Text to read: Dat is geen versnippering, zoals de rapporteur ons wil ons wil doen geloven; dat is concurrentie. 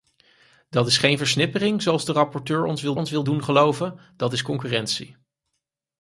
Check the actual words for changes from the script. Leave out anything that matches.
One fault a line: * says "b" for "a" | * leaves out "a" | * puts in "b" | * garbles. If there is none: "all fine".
all fine